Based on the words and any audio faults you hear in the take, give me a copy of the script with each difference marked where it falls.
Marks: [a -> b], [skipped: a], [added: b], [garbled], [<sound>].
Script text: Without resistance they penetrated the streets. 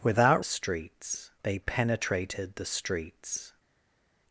Without [resistance -> streets] they penetrated the streets.